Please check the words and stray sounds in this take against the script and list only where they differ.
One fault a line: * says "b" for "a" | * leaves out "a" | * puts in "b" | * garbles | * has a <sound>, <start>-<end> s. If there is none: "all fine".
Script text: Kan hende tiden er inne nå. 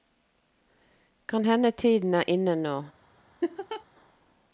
* has a laugh, 3.4-3.8 s